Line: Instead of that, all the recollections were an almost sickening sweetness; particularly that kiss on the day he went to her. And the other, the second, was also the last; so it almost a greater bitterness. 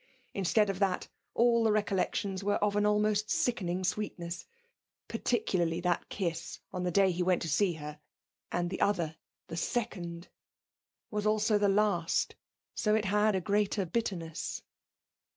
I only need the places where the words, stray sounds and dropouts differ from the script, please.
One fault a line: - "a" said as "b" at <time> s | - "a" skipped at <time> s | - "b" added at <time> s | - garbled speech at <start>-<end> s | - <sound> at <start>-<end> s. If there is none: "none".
- "of" added at 2.5 s
- "see" added at 7.5 s
- "almost" said as "had" at 13.1 s